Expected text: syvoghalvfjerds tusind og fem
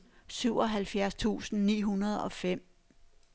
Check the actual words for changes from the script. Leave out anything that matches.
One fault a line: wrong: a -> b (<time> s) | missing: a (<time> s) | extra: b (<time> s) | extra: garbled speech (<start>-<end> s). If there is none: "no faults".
extra: ni hundrede (1.6 s)